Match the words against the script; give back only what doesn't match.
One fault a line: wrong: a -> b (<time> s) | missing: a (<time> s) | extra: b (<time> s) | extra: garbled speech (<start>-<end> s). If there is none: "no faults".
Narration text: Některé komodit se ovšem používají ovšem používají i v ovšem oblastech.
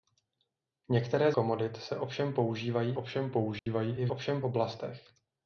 no faults